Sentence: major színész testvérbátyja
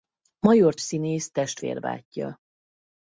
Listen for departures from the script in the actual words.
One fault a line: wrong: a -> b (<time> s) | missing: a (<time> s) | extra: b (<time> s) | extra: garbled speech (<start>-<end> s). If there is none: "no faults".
no faults